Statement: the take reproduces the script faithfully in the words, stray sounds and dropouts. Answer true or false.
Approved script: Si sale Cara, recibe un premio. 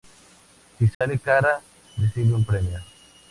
false